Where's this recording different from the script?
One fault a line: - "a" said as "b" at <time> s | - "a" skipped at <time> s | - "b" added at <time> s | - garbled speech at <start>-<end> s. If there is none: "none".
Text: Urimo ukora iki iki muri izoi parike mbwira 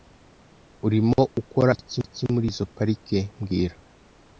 none